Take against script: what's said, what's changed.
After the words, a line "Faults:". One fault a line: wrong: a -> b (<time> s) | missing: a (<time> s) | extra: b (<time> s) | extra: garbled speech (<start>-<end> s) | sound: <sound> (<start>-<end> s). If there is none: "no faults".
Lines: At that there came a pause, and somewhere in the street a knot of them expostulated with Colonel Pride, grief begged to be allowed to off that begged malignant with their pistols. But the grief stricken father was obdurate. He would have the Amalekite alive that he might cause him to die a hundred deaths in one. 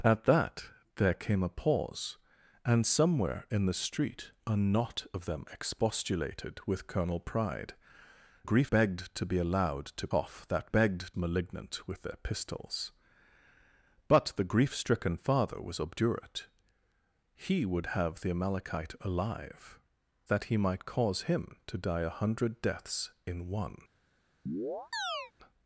At that there came a pause, and somewhere in the street a knot of them expostulated with Colonel Pride, grief begged to be allowed to off that begged malignant with their pistols. But the grief stricken father was obdurate. He would have the Amalekite alive that he might cause him to die a hundred deaths in one.
Faults:
sound: chirp (24.5-25.3 s)